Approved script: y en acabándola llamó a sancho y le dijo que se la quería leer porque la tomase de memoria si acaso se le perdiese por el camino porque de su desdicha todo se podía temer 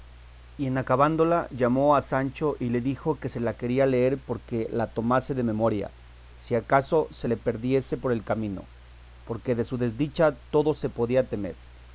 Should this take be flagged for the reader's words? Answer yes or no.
no